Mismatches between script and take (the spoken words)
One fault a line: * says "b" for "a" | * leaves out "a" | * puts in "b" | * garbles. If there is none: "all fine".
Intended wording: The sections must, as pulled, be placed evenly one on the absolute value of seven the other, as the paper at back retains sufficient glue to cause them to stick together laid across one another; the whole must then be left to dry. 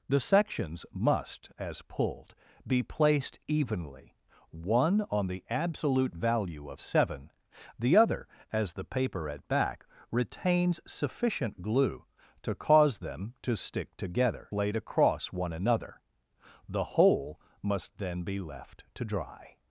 all fine